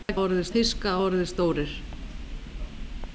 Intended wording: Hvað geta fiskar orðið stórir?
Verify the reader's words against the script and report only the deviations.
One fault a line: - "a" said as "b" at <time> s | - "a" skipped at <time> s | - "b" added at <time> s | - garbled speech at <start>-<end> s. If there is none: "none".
- "geta" said as "orðið" at 0.2 s